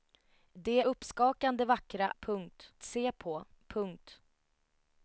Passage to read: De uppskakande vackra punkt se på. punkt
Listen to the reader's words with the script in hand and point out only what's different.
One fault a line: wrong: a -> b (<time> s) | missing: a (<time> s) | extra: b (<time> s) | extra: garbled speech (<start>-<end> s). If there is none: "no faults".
no faults